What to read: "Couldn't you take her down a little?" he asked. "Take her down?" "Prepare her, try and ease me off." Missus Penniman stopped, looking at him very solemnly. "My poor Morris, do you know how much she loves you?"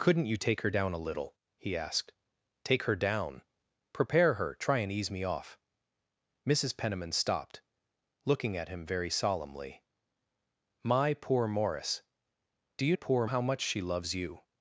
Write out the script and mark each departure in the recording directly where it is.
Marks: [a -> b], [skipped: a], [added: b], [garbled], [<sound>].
"Couldn't you take her down a little?" he asked. "Take her down?" "Prepare her, try and ease me off." Missus Penniman stopped, looking at him very solemnly. "My poor Morris, do you [know -> poor] how much she loves you?"